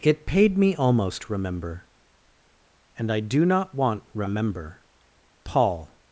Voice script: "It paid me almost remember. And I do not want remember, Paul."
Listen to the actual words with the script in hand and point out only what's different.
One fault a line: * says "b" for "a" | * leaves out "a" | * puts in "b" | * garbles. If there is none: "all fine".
all fine